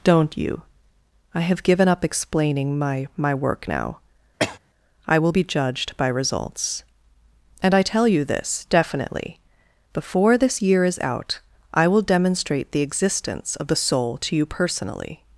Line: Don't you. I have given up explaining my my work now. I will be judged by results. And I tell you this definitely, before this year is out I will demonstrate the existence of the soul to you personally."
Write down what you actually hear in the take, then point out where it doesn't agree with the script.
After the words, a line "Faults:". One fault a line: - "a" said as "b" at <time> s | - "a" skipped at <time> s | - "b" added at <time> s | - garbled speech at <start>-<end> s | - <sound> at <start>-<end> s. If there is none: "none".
Don't you. I have given up explaining my my work now. I will be judged by results. And I tell you this definitely, before this year is out I will demonstrate the existence of the soul to you personally."
Faults:
- cough at 4.4-4.6 s